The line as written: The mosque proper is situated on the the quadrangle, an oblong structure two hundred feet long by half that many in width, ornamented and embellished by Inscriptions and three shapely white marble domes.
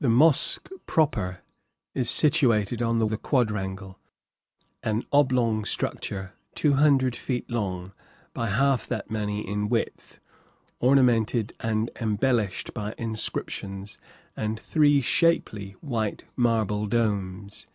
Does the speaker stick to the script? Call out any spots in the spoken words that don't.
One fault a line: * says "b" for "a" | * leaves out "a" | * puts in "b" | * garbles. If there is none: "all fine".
all fine